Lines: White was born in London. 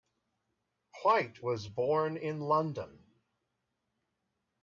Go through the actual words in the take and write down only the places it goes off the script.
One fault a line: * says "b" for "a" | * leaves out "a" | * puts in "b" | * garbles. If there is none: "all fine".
all fine